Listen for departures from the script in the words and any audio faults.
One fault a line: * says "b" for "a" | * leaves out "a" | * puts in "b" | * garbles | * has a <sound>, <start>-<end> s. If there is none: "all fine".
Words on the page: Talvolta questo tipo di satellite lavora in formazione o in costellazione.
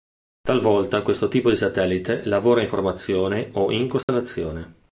* has a dropout, 4.0-4.1 s